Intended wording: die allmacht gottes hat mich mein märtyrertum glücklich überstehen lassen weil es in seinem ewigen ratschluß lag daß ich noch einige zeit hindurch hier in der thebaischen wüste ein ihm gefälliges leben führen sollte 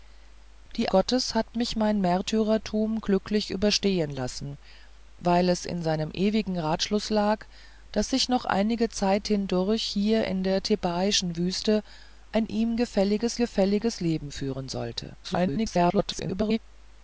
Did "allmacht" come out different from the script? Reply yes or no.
yes